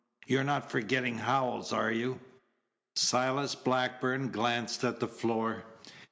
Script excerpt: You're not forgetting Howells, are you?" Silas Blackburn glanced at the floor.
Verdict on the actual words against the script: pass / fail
pass